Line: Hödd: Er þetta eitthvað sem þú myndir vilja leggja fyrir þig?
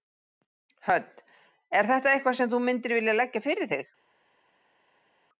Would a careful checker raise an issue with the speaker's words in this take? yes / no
no